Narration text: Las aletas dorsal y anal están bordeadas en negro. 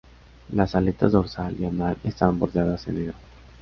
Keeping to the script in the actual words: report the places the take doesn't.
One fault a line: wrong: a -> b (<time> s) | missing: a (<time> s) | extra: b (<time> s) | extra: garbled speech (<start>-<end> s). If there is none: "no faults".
no faults